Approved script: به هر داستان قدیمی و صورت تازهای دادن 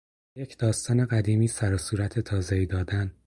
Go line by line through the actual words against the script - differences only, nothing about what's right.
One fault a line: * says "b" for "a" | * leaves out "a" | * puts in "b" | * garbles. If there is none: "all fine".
* says "یک" for "هر"
* puts in "سر"